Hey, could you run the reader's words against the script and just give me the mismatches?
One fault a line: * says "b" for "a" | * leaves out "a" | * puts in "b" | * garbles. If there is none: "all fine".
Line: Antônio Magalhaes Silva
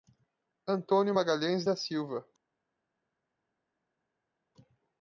* puts in "da"